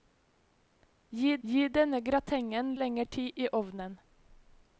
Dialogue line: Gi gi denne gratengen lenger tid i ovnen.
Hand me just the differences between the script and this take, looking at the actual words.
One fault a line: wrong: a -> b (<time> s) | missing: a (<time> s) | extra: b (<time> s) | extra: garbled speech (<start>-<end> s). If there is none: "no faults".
no faults